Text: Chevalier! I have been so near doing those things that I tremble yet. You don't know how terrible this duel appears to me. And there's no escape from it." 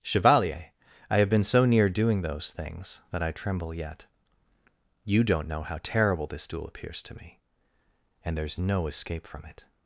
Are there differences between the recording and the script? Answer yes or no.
no